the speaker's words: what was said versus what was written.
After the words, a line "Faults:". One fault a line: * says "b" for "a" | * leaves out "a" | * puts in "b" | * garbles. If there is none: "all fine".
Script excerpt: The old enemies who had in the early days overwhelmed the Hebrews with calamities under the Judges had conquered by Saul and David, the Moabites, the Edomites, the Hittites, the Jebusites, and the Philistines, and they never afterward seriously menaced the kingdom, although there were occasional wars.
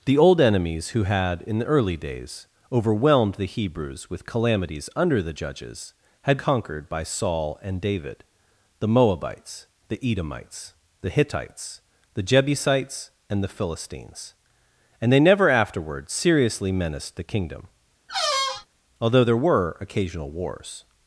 The old enemies who had in the early days overwhelmed the Hebrews with calamities under the Judges had conquered by Saul and David, the Moabites, the Edomites, the Hittites, the Jebusites, and the Philistines, and they never afterward seriously menaced the kingdom, although there were occasional wars.
Faults:
all fine